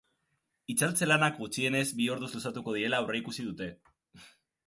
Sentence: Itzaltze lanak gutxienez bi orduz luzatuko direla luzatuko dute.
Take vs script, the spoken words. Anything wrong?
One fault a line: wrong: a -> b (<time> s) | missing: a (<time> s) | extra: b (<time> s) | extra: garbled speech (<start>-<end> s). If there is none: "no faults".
wrong: luzatuko -> aurreikusi (3.0 s)